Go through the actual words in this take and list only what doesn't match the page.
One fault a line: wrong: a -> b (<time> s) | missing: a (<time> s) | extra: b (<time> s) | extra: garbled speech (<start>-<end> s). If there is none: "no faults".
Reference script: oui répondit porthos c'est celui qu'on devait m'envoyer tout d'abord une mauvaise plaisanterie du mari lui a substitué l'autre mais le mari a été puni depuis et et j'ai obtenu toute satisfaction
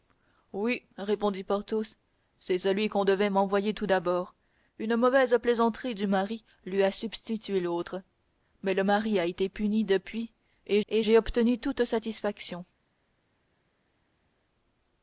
no faults